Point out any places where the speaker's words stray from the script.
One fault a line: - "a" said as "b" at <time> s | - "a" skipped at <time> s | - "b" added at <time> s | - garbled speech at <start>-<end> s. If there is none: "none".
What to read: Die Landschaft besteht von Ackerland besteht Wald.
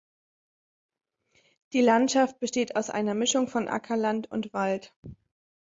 - "aus einer Mischung" added at 2.8 s
- "besteht" said as "und" at 4.3 s